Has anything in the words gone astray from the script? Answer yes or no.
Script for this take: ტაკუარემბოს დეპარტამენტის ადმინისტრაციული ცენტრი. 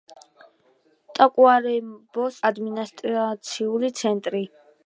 yes